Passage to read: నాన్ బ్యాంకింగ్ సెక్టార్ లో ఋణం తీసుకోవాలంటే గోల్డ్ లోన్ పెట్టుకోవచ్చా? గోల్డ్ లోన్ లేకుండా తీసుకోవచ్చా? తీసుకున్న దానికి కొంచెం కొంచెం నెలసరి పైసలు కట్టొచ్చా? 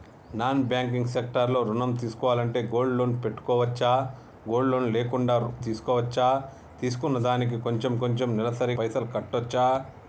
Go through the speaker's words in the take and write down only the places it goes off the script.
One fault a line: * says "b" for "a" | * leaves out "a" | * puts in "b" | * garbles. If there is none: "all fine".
all fine